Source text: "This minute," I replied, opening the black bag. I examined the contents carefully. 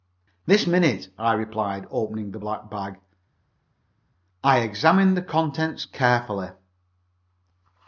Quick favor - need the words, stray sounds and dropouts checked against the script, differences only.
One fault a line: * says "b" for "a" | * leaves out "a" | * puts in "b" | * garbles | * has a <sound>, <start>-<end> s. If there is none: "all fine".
all fine